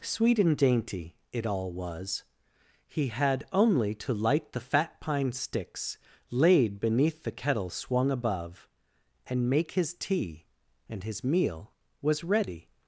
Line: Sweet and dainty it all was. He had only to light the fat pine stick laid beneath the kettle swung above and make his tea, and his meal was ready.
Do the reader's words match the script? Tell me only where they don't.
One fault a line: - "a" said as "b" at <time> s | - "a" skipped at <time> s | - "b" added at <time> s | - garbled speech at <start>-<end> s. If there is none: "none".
- "stick" said as "sticks" at 5.3 s